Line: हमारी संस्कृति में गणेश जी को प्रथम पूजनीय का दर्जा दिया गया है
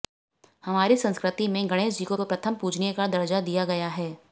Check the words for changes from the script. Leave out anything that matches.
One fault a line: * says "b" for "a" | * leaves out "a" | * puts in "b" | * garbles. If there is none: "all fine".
* puts in "को"